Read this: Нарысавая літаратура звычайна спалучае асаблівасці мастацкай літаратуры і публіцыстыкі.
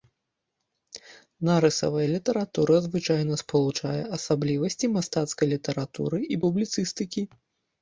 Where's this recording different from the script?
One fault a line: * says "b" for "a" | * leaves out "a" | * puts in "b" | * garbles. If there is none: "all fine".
all fine